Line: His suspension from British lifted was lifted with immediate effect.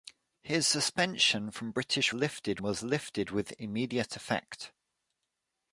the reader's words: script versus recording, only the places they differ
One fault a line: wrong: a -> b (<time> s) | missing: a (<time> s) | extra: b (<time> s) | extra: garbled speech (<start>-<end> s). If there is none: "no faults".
no faults